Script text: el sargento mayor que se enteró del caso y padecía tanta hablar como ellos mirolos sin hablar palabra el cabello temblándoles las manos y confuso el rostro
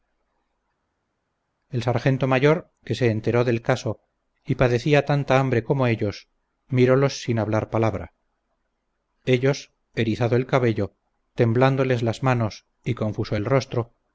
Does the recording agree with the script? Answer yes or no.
no